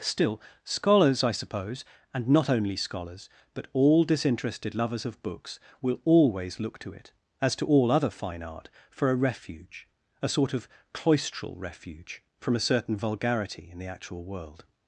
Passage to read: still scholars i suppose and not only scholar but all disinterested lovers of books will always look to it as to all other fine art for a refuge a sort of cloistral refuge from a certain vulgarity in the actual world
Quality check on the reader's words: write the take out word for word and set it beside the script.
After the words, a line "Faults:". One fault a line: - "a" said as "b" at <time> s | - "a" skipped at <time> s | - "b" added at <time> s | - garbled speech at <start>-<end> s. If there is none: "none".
still scholars i suppose and not only scholars but all disinterested lovers of books will always look to it as to all other fine art for a refuge a sort of cloistral refuge from a certain vulgarity in the actual world
Faults:
- "scholar" said as "scholars" at 2.8 s